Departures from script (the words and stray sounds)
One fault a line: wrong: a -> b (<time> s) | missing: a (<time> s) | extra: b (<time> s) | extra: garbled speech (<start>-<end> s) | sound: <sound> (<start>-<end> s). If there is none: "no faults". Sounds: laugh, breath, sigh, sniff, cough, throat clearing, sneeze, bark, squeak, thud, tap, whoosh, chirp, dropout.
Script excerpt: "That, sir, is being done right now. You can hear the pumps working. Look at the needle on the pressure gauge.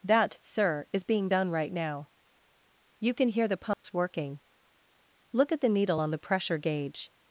sound: dropout (3.7-3.8 s)